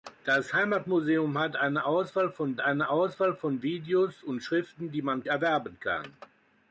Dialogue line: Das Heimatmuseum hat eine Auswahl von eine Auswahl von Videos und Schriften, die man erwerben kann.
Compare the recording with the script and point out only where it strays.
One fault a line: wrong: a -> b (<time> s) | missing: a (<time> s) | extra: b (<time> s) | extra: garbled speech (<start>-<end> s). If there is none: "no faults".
no faults